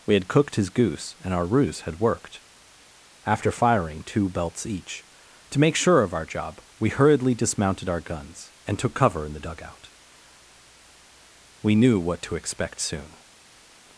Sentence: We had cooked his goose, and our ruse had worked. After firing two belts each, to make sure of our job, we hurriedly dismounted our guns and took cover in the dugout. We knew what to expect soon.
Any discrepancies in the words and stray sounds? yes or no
no